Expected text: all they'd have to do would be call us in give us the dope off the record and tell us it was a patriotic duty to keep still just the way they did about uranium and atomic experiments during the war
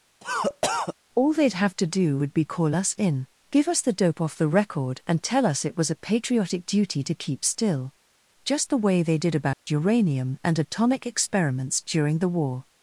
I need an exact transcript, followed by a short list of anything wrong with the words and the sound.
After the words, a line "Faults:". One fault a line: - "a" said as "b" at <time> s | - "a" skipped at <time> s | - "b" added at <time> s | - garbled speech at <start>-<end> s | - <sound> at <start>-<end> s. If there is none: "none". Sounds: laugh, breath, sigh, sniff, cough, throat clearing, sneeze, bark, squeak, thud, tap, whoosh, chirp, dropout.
all they'd have to do would be call us in give us the dope off the record and tell us it was a patriotic duty to keep still just the way they did about uranium and atomic experiments during the war
Faults:
- cough at 0.2-0.9 s
- dropout at 9.5-9.7 s